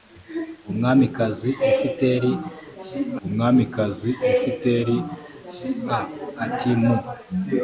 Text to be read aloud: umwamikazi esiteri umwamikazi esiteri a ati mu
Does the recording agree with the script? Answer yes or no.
yes